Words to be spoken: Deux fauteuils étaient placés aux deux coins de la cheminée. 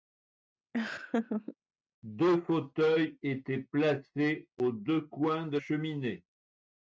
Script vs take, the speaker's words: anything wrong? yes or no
yes